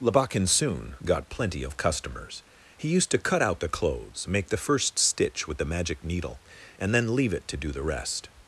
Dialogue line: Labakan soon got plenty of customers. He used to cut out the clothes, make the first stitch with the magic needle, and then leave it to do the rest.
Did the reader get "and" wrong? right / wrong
right